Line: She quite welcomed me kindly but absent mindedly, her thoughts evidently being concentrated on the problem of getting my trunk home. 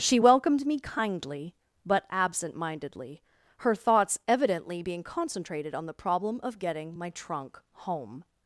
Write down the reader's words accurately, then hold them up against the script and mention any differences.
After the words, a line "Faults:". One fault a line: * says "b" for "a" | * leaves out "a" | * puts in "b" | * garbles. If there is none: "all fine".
She welcomed me kindly but absent mindedly, her thoughts evidently being concentrated on the problem of getting my trunk home.
Faults:
* leaves out "quite"